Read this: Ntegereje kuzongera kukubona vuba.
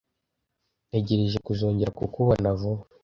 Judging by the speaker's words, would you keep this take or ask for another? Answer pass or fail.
pass